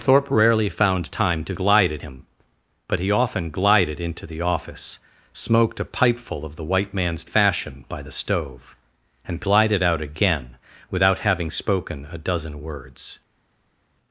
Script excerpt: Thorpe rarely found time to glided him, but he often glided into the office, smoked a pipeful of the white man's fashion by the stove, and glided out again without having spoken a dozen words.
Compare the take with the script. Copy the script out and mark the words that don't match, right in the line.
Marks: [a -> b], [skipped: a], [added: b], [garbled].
Thorpe rarely found time to glided him, but he often glided into the office, smoked a pipeful of the white man's fashion by the stove, and glided out again without having spoken a dozen words.